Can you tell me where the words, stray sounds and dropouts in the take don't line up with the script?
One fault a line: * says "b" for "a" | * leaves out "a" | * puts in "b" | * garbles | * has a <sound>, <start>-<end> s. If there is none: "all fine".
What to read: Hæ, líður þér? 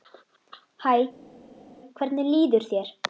* puts in "hvernig"